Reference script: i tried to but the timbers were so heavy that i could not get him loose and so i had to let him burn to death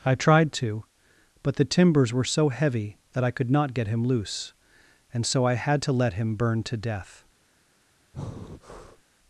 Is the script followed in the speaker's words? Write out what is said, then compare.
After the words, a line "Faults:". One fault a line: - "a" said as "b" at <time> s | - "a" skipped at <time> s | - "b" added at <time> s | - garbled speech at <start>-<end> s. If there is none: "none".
i tried to but the timbers were so heavy that i could not get him loose and so i had to let him burn to death
Faults:
none